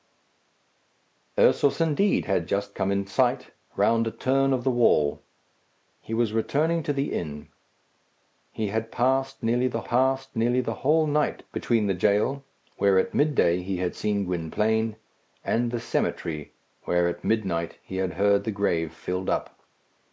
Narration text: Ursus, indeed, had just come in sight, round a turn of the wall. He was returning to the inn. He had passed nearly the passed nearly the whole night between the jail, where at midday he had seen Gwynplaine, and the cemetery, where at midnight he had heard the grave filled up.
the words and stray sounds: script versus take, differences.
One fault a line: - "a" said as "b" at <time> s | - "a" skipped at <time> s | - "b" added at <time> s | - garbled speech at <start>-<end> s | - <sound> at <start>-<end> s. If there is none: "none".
none